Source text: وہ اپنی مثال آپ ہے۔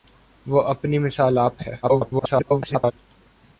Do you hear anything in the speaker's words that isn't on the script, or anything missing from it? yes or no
yes